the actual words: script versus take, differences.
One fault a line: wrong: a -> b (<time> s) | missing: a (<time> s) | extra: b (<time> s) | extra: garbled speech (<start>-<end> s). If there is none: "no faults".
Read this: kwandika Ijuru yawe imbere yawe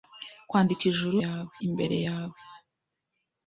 no faults